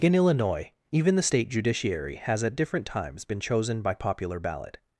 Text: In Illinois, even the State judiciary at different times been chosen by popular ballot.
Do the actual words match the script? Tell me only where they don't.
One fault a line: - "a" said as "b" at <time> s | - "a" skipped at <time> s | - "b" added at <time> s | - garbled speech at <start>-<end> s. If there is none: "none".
- "has" added at 2.2 s